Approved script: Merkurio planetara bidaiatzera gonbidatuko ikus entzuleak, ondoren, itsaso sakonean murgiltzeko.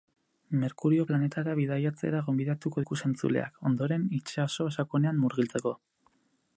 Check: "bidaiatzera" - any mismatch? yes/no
no